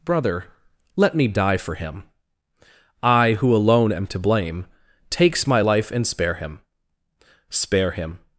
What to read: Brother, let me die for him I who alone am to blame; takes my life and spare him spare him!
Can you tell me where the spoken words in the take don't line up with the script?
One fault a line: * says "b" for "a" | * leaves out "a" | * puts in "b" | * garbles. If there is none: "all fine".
all fine